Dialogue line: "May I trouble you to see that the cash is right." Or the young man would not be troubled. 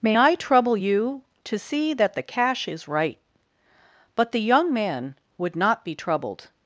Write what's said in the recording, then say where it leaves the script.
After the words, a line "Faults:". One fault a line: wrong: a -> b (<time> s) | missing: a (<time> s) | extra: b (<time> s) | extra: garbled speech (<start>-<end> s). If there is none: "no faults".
"May I trouble you to see that the cash is right." But the young man would not be troubled.
Faults:
wrong: Or -> But (4.1 s)